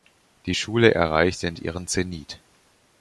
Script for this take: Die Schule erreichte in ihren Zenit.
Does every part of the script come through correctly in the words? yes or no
yes